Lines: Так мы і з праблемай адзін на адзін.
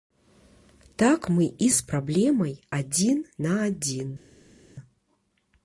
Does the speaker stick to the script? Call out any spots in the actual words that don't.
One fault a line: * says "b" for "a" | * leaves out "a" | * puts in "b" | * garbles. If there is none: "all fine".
all fine